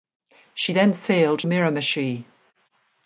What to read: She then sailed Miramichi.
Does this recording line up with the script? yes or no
yes